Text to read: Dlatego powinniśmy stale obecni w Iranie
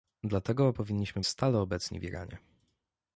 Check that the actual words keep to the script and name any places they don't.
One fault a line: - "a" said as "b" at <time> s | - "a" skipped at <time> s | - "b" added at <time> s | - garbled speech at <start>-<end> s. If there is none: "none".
none